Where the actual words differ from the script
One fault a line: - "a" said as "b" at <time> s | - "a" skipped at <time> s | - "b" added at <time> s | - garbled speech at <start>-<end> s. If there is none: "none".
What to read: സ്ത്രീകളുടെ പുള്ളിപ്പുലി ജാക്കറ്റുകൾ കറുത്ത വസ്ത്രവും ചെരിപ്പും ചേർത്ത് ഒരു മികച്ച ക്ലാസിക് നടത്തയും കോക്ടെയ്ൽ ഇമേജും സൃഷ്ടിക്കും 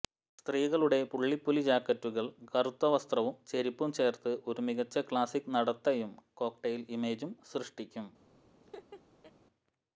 none